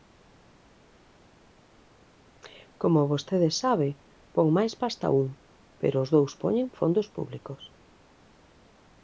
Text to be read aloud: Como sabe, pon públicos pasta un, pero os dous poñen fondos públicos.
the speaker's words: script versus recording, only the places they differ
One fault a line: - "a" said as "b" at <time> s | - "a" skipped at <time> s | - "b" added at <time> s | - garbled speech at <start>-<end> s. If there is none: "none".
- "vostede" added at 3.1 s
- "públicos" said as "máis" at 4.6 s